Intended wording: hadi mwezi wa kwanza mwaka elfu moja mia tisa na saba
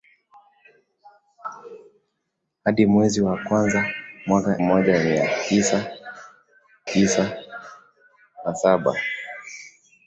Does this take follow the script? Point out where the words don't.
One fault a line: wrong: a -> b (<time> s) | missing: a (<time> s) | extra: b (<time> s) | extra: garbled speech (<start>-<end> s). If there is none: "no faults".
missing: elfu (4.6 s)
extra: tisa (6.9 s)